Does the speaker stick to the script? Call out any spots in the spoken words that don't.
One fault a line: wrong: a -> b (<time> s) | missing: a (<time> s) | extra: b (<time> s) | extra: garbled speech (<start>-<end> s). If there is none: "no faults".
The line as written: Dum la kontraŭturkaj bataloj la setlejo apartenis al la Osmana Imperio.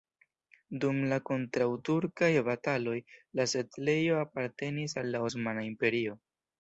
no faults